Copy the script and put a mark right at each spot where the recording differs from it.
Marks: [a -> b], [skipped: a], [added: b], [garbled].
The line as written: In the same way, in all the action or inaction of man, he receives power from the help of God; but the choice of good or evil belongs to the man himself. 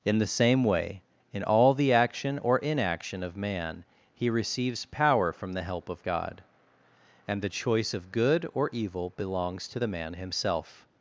In the same way, in all the action or inaction of man, he receives power from the help of God; [but -> and] the choice of good or evil belongs to the man himself.